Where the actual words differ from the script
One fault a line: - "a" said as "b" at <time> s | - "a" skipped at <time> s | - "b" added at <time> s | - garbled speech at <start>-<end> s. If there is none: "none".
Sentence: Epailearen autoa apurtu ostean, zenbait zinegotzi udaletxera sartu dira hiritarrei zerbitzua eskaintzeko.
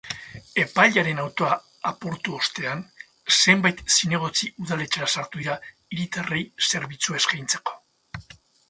none